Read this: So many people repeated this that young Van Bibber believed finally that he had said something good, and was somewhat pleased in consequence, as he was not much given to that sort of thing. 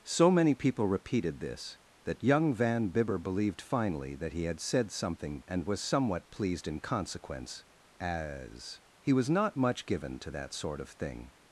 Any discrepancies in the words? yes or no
yes